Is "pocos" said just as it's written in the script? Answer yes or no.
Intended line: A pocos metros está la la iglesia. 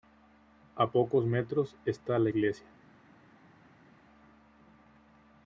yes